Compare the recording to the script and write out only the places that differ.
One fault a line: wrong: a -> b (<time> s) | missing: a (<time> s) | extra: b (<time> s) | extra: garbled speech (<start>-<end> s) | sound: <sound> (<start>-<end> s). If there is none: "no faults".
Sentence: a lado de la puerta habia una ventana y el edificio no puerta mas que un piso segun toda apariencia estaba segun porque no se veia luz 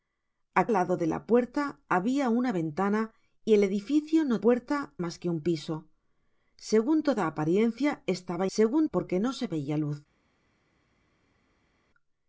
no faults